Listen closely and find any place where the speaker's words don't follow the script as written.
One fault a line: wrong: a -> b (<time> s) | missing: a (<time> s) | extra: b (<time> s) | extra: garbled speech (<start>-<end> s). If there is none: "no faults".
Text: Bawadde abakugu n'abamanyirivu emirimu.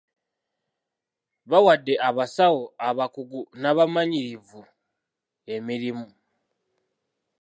extra: abasawo (2.1 s)